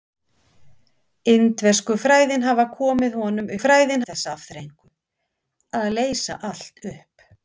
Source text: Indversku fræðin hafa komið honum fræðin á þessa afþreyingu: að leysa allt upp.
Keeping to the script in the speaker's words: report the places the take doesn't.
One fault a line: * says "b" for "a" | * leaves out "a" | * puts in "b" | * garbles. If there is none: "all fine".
all fine